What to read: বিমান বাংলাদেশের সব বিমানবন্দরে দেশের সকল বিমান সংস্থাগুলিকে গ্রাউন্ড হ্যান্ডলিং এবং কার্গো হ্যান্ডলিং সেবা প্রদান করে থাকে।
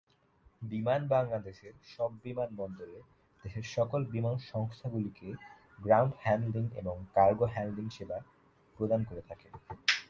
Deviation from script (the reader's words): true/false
false